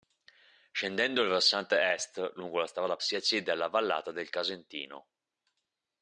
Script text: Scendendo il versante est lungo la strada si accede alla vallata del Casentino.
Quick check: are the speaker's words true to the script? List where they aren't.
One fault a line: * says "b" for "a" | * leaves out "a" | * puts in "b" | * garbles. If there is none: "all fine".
all fine